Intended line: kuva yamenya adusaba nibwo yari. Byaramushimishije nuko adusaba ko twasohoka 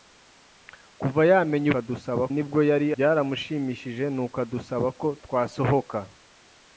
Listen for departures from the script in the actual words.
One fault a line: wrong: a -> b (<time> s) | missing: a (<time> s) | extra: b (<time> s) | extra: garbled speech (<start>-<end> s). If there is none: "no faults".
no faults